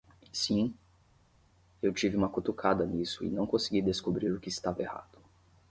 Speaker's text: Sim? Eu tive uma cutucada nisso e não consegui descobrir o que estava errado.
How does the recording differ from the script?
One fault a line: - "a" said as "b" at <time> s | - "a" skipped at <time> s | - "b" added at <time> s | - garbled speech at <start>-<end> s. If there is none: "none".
none